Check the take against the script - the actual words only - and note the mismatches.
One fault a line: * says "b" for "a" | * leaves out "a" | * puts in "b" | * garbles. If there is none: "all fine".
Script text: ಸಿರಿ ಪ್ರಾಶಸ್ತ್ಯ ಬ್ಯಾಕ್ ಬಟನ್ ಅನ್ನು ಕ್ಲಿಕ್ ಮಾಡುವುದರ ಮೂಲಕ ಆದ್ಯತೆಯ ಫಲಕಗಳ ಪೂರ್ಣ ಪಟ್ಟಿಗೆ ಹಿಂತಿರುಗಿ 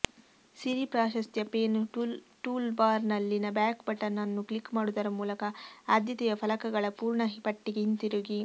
* puts in "ಪೇನ್ ಟೂಲ್ಬಾರ್ನಲ್ಲಿನ"